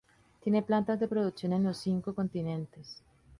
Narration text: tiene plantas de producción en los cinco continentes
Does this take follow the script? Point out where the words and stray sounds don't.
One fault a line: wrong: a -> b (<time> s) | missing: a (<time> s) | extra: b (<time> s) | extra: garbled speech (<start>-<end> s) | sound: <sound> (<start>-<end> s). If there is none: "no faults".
no faults